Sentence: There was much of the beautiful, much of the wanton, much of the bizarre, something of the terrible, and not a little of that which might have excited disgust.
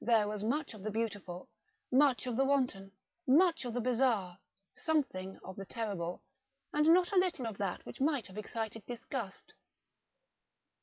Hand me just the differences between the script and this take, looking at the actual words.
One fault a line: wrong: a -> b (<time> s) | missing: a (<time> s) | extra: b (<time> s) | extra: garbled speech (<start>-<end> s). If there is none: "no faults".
no faults